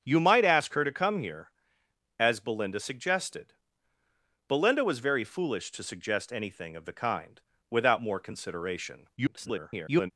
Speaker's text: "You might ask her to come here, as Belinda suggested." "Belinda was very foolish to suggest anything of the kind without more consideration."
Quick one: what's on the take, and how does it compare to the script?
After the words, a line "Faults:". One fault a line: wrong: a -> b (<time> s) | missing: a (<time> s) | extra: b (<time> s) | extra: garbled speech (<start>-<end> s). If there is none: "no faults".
"You might ask her to come here, as Belinda suggested." "Belinda was very foolish to suggest anything of the kind without more consideration." [garbled]
Faults:
extra: garbled speech (9.2-10.1 s)